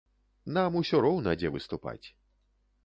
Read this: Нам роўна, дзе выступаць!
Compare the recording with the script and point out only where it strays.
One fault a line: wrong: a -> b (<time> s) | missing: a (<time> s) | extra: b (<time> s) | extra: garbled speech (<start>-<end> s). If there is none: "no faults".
extra: усё (0.8 s)